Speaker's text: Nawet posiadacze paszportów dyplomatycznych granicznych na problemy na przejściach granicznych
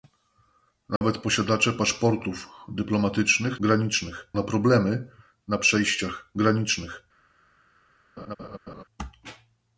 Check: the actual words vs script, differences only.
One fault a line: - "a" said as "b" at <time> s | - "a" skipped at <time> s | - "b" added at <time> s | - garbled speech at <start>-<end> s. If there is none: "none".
none